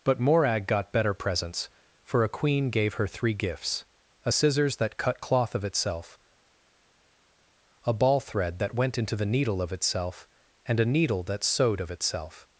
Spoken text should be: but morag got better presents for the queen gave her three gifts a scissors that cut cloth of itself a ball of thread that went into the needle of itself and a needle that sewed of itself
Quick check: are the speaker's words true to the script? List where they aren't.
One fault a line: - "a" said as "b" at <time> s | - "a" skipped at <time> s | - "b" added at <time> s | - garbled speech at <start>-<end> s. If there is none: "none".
- "the" said as "a" at 2.2 s
- "of" skipped at 8.2 s